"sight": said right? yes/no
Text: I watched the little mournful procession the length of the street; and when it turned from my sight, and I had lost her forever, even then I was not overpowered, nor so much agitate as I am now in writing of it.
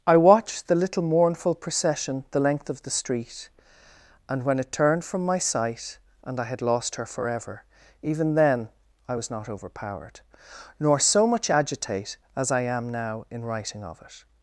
yes